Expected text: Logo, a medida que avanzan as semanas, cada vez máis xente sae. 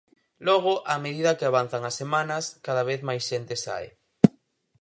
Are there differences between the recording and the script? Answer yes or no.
no